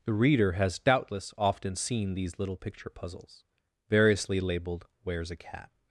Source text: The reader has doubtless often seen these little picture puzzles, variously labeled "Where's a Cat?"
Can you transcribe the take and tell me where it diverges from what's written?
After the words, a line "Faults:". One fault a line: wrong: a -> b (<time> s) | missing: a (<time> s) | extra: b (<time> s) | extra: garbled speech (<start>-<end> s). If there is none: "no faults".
The reader has doubtless often seen these little picture puzzles, variously labeled "Where's a Cat?"
Faults:
no faults